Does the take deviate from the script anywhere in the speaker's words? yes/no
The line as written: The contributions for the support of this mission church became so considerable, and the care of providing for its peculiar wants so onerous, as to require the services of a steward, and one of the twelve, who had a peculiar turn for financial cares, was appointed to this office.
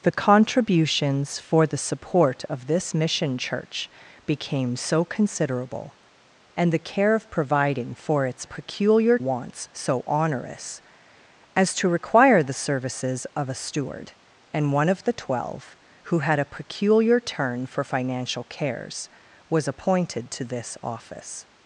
no